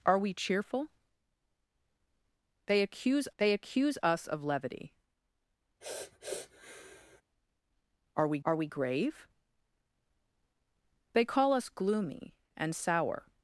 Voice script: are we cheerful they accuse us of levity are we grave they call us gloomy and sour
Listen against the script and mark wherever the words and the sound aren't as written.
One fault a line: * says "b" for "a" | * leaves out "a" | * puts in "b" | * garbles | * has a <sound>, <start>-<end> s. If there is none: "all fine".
* puts in "they accuse"
* has a sniff, 5.8-7.2 s
* puts in "are we"